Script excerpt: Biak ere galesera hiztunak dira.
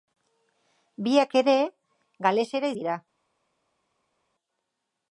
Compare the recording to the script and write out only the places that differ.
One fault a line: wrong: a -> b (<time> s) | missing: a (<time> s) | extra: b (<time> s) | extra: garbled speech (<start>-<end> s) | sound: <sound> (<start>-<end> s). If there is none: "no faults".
missing: hiztunak (2.7 s)